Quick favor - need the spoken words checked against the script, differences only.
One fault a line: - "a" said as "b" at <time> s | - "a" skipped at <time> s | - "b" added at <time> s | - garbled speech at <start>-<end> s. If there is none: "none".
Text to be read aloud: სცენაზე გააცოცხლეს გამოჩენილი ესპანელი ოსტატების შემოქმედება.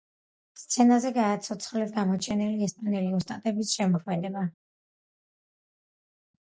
none